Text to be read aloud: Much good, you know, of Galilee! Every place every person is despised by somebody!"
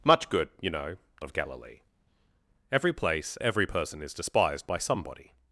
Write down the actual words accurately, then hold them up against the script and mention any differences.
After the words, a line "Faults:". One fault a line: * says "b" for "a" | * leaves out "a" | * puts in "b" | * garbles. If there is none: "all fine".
Much good, you know, of Galilee! Every place every person is despised by somebody!"
Faults:
all fine